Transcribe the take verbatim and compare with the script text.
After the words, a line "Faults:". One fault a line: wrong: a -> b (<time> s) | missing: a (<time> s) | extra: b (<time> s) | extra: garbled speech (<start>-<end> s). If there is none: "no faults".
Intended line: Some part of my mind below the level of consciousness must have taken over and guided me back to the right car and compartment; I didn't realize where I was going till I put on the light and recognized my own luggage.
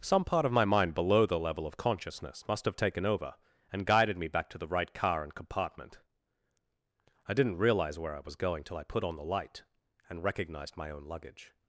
Some part of my mind below the level of consciousness must have taken over and guided me back to the right car and compartment; I didn't realize where I was going till I put on the light and recognized my own luggage.
Faults:
no faults